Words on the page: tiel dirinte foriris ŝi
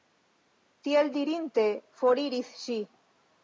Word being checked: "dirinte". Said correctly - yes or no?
yes